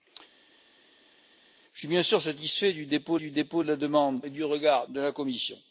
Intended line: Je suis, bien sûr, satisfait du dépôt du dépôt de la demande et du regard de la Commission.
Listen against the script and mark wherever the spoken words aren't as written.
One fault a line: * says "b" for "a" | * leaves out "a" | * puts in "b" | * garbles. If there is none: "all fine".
all fine